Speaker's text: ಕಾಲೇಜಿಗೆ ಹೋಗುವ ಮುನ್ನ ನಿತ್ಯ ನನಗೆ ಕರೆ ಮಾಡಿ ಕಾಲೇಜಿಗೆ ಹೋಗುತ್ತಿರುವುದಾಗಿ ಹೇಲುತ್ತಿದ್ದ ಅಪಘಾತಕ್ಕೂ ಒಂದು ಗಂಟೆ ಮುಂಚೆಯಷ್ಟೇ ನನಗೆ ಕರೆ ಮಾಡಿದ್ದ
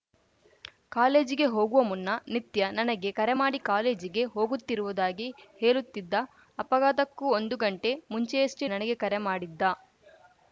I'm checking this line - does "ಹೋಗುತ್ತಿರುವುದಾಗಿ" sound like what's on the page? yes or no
yes